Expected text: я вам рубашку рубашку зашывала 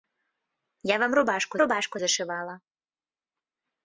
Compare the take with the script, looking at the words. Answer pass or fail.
pass